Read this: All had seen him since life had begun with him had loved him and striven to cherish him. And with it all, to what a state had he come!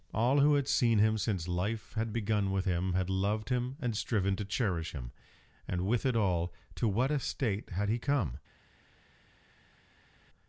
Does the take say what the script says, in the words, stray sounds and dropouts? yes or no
no